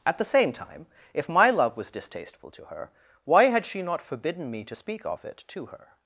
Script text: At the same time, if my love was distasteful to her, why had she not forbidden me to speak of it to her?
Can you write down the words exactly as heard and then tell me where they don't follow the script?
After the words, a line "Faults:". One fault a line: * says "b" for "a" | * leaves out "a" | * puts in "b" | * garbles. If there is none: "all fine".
At the same time, if my love was distasteful to her, why had she not forbidden me to speak of it to her?
Faults:
all fine